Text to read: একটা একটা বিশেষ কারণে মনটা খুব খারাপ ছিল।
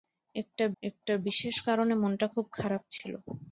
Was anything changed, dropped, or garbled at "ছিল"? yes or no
no